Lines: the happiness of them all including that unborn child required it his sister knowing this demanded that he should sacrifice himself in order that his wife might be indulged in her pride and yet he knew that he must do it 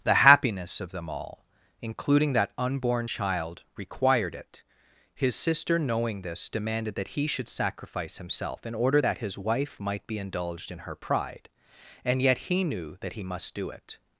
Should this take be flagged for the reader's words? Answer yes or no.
no